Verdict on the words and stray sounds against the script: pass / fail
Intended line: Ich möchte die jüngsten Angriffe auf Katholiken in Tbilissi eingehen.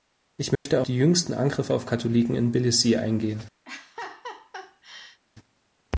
fail